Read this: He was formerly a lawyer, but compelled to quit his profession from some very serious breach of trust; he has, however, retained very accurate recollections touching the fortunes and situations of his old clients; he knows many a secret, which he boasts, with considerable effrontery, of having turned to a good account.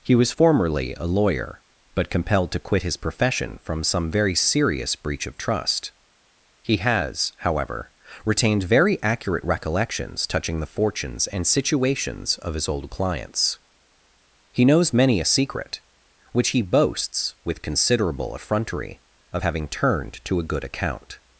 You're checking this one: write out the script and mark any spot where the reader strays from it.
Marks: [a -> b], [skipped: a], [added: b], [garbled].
He was formerly a lawyer, but compelled to quit his profession from some very serious breach of trust; he has, however, retained very accurate recollections touching the fortunes and situations of his old clients; he knows many a secret, which he boasts, with considerable effrontery, of having turned to a good account.